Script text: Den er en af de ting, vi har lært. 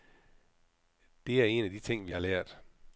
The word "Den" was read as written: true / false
false